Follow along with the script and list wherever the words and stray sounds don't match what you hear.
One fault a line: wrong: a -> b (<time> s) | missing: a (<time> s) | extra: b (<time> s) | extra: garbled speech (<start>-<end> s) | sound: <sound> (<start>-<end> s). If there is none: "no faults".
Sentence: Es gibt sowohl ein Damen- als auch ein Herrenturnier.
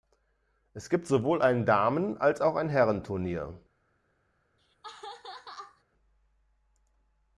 sound: laugh (4.6-5.8 s)